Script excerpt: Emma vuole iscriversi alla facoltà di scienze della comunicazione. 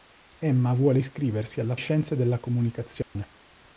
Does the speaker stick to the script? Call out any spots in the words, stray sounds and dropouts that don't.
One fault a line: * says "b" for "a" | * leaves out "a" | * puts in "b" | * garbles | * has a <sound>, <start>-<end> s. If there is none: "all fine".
* leaves out "facoltà di"
* has a dropout, 3.0-3.2 s